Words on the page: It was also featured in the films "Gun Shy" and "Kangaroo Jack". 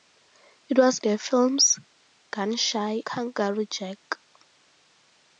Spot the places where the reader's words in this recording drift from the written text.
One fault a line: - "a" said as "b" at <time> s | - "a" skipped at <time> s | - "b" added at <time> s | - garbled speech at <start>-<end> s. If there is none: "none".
- "also featured in" skipped at 1.0 s
- "and" skipped at 3.0 s